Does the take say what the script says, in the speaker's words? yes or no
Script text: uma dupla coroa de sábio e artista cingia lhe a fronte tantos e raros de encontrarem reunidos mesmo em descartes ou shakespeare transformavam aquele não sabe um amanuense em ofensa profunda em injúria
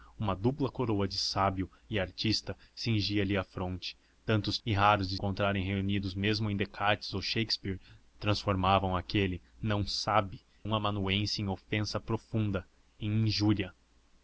yes